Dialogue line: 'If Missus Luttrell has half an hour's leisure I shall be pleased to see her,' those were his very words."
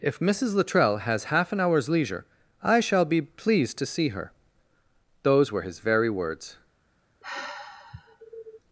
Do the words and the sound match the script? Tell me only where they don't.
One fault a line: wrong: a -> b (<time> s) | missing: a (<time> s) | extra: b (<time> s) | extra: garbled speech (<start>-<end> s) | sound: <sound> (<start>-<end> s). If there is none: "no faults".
sound: sigh (7.2-8.6 s)